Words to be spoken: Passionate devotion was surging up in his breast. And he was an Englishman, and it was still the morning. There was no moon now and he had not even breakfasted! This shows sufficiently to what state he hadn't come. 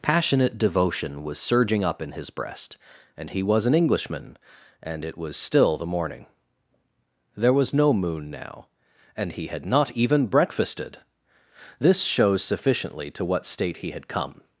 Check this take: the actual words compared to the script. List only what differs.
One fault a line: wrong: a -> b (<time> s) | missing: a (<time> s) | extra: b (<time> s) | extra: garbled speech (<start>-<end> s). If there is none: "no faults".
wrong: hadn't -> had (13.9 s)